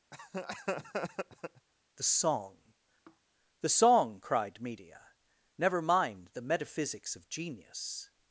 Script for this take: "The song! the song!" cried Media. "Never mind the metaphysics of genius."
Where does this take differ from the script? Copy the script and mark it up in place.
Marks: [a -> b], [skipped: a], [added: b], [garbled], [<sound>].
[laugh] "The song! [sigh] the song!" cried Media. "Never mind the metaphysics of genius."